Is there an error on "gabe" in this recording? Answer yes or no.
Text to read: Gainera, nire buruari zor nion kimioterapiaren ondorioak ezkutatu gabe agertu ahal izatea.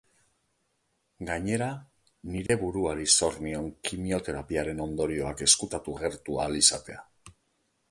yes